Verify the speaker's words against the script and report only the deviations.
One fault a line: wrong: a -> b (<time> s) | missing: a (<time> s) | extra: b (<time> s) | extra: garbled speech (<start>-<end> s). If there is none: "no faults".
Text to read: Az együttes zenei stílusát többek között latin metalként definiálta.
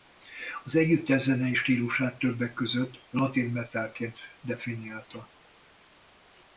no faults